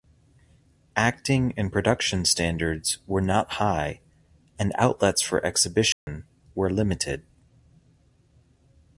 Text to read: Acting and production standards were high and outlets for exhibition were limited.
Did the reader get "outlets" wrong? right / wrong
right